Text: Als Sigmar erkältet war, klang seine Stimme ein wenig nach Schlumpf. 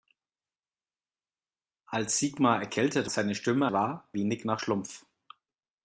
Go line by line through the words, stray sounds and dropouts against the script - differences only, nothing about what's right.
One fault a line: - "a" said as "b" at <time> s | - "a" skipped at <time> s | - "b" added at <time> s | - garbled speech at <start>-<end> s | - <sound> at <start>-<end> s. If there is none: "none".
- "war klang" skipped at 3.1 s
- "ein" said as "war" at 3.7 s